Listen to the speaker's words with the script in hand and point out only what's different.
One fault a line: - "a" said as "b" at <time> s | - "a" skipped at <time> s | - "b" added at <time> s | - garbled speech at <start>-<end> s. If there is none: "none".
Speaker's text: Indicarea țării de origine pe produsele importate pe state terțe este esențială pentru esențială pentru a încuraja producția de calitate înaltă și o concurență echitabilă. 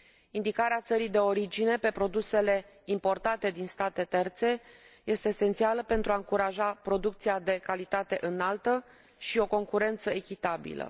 - "pe" said as "din" at 3.5 s
- "esențială pentru" skipped at 6.1 s